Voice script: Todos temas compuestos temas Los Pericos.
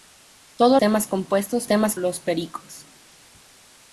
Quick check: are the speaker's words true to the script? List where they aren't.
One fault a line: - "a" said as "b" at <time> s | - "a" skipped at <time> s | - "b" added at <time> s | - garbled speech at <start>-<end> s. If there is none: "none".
none